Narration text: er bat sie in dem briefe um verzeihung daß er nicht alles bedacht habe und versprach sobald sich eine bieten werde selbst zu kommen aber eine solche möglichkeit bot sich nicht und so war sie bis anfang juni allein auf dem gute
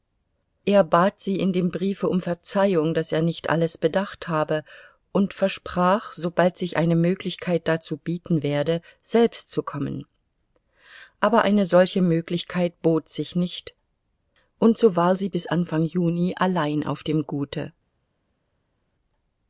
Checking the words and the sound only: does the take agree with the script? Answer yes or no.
no